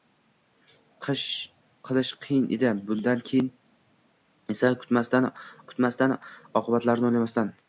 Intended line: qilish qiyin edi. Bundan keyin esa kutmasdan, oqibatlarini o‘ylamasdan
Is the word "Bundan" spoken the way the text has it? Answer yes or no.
yes